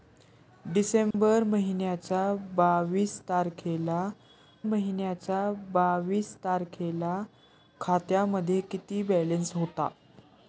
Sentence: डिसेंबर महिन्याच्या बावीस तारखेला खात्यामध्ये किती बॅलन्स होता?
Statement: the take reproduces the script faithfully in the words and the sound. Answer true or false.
false